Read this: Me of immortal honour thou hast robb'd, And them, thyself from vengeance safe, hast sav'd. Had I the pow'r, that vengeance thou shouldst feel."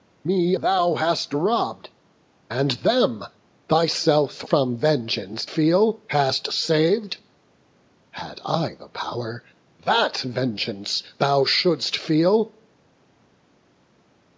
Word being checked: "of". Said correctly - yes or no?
no